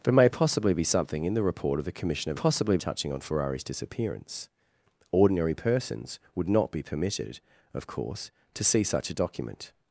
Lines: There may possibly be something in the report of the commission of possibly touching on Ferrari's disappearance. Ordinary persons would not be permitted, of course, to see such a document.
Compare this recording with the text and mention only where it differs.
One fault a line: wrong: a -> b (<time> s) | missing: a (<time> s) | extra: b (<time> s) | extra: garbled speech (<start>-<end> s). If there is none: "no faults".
no faults